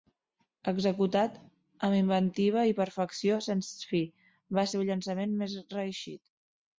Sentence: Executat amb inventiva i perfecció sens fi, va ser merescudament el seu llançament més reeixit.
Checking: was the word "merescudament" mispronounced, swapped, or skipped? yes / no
yes